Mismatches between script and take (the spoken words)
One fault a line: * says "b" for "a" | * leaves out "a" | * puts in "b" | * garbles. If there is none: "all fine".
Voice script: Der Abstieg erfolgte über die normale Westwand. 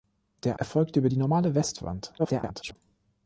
* leaves out "Abstieg"
* garbles